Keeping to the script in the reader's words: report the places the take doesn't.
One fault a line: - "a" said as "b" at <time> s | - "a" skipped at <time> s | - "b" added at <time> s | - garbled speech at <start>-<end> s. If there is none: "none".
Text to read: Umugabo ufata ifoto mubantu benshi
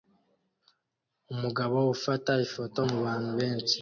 none